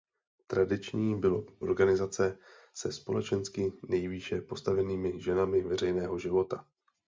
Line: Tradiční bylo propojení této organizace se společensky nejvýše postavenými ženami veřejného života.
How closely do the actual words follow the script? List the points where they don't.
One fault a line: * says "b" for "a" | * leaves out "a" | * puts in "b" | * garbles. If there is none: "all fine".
* leaves out "propojení této"